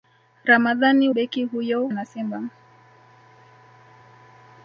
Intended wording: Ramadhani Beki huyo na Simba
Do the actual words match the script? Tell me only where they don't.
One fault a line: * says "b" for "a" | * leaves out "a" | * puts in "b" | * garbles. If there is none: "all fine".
all fine